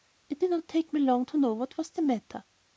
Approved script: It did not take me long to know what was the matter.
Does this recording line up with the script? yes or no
yes